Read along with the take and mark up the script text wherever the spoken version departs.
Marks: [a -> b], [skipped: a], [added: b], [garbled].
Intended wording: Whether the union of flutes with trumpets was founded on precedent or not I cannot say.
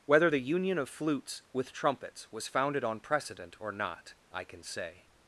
Whether the union of flutes with trumpets was founded on precedent or not I [cannot -> can] say.